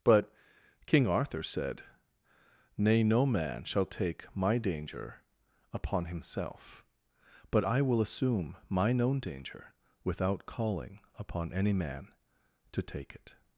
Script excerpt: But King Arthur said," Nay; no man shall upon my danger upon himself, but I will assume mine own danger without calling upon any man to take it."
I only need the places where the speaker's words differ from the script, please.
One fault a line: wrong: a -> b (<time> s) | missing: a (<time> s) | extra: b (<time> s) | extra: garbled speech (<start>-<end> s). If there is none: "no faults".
wrong: upon -> take (3.9 s)